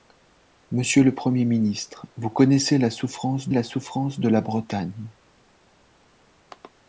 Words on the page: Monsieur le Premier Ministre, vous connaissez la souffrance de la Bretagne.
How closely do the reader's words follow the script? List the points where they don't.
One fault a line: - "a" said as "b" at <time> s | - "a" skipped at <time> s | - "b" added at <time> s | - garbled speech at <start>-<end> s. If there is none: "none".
- "la souffrance" added at 3.5 s